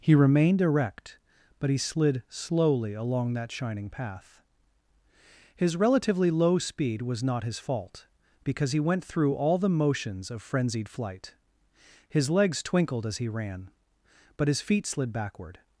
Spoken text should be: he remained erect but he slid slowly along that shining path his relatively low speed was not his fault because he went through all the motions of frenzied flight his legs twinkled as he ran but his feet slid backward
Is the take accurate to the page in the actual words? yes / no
yes